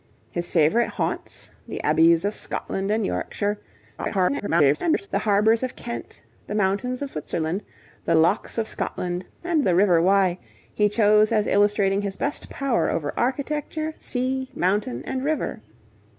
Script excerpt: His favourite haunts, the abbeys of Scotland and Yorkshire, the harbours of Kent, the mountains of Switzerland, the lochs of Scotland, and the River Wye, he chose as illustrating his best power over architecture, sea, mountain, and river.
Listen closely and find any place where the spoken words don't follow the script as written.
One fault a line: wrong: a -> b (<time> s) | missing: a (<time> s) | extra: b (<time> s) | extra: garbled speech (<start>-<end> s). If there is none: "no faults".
extra: garbled speech (4.0-5.1 s)